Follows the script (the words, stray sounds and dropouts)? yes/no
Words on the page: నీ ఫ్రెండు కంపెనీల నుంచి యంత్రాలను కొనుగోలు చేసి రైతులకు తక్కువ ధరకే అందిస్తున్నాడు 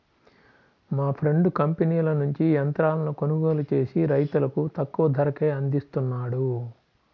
no